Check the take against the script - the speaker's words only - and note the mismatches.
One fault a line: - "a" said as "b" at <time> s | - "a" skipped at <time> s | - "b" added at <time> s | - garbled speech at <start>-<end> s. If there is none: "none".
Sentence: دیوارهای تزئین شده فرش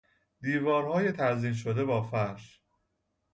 - "با" added at 1.8 s